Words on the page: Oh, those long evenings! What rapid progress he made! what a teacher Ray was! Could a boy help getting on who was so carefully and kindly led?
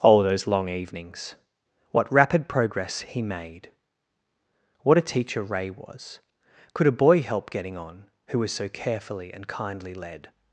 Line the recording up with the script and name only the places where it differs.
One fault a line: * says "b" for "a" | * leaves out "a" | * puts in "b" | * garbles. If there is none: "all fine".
all fine